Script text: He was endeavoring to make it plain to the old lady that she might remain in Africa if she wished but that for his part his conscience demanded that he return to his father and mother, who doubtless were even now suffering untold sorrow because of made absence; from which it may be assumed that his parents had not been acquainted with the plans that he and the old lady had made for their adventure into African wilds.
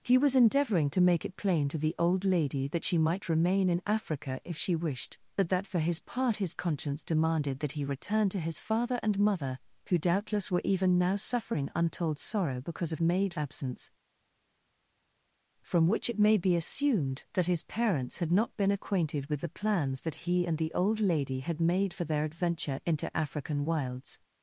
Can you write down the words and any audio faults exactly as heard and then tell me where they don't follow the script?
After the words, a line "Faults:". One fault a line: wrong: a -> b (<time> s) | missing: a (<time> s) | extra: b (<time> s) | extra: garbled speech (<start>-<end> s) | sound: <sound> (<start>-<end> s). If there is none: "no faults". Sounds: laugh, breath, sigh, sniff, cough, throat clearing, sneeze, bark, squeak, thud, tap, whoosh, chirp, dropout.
He was endeavoring to make it plain to the old lady that she might remain in Africa if she wished but that for his part his conscience demanded that he return to his father and mother, who doubtless were even now suffering untold sorrow because of made absence; from which it may be assumed that his parents had not been acquainted with the plans that he and the old lady had made for their adventure into African wilds.
Faults:
no faults